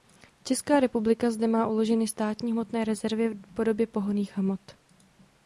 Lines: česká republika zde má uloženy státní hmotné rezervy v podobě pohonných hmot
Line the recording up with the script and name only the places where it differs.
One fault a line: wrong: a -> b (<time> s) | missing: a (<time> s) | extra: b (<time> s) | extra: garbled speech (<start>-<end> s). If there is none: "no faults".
no faults